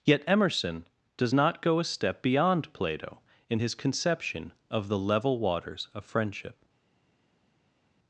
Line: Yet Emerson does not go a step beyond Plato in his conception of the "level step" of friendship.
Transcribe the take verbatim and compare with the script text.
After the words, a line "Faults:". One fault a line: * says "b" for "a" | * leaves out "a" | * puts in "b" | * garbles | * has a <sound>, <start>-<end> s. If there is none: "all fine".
Yet Emerson does not go a step beyond Plato in his conception of the "level waters" of friendship.
Faults:
* says "waters" for "step"